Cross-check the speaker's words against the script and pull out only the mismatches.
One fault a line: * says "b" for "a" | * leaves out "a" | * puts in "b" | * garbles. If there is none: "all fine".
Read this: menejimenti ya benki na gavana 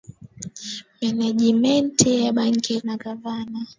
all fine